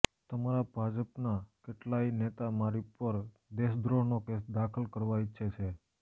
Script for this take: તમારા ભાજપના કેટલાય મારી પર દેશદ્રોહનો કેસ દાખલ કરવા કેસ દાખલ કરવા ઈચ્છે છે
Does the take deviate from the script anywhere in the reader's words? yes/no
yes